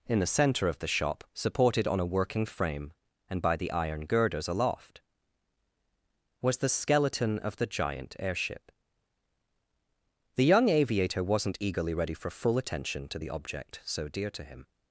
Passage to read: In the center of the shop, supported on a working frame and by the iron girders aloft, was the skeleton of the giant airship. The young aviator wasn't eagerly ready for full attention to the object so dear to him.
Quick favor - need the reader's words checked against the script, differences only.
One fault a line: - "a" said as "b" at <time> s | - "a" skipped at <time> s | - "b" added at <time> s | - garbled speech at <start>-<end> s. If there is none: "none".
none